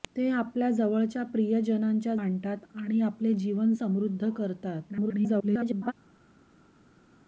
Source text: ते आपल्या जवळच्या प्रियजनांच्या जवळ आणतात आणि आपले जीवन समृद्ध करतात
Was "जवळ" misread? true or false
true